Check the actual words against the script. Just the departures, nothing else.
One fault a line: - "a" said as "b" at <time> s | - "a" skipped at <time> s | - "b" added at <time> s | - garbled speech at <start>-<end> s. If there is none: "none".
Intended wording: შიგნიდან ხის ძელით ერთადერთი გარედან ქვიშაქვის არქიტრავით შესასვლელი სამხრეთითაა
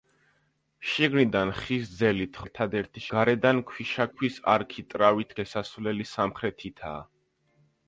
none